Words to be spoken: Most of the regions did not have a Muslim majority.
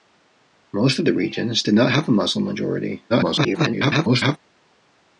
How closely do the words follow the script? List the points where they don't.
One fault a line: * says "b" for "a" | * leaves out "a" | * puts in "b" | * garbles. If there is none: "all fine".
* garbles